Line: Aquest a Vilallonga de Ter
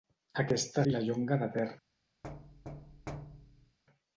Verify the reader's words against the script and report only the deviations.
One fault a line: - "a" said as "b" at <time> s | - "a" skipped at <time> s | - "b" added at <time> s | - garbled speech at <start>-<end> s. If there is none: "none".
none